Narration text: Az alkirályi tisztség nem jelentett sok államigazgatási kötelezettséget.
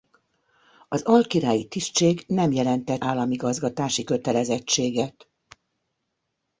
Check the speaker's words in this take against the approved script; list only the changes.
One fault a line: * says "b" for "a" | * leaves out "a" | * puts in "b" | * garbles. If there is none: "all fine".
* leaves out "sok"